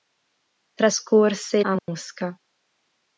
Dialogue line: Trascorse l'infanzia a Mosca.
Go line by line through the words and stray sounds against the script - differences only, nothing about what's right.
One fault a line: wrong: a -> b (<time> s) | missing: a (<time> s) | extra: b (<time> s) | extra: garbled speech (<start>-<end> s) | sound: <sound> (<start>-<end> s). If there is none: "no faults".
missing: l'infanzia (1.6 s)
sound: dropout (1.8-1.9 s)